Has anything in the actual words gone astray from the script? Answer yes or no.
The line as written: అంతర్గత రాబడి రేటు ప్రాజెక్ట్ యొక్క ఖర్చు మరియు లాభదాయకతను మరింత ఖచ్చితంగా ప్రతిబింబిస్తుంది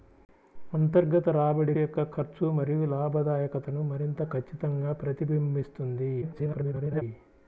yes